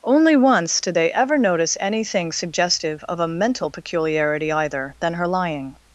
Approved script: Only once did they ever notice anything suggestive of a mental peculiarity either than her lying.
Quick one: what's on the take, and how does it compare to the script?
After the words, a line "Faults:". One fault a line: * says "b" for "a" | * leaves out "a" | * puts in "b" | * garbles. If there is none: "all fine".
Only once did they ever notice anything suggestive of a mental peculiarity either than her lying.
Faults:
all fine